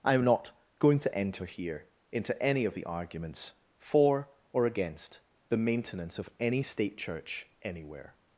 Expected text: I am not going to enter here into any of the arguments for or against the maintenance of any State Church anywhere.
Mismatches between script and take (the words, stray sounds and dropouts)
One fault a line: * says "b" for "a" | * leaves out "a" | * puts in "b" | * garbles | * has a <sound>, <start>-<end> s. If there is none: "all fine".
all fine